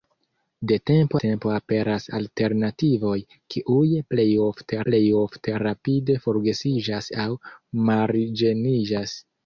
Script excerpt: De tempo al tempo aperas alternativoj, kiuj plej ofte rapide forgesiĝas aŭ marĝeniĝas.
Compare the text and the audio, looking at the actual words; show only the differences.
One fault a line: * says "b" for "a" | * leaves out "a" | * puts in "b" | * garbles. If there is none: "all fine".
* leaves out "al"
* puts in "plej ofte"